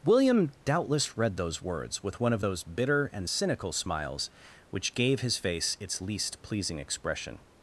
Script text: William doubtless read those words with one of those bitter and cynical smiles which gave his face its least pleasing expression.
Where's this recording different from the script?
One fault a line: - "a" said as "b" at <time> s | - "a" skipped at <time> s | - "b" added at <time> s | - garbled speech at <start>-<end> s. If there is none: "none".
none